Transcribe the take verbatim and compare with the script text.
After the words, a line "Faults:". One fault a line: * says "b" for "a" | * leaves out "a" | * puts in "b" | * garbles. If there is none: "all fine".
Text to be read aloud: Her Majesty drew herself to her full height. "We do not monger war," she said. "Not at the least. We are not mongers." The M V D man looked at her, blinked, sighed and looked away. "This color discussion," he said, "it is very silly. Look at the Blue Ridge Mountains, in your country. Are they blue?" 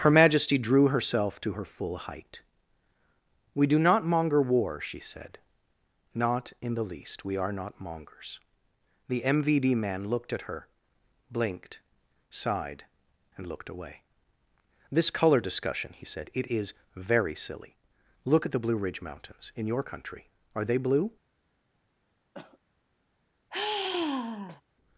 Her Majesty drew herself to her full height. "We do not monger war," she said. "Not in the least. We are not mongers." The M V D man looked at her, blinked, sighed and looked away. "This color discussion," he said, "it is very silly. Look at the Blue Ridge Mountains, in your country. Are they blue?"
Faults:
* says "in" for "at"